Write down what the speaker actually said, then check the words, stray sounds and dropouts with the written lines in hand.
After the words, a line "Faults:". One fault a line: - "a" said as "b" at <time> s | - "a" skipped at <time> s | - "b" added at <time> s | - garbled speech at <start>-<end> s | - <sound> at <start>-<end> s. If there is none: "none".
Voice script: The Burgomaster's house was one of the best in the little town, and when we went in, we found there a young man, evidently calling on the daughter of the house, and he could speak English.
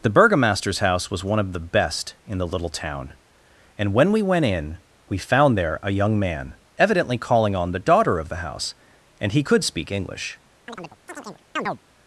The Burgomaster's house was one of the best in the little town, and when we went in, we found there a young man, evidently calling on the daughter of the house, and he could speak English.
Faults:
- chirp at 10.7-11.8 s